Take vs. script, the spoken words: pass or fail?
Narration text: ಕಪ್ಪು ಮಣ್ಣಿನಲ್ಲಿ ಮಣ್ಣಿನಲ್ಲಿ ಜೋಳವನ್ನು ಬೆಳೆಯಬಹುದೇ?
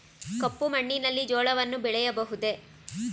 fail